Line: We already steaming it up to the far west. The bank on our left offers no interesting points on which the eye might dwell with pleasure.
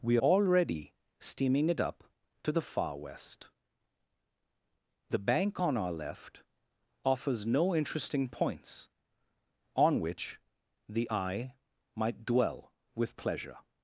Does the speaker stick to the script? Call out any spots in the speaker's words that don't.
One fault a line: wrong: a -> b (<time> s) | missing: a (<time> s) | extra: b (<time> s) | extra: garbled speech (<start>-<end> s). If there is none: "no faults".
no faults